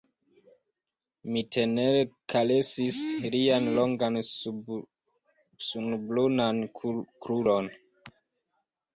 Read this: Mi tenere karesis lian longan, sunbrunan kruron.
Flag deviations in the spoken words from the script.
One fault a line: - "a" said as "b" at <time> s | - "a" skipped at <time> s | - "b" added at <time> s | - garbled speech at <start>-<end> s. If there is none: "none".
none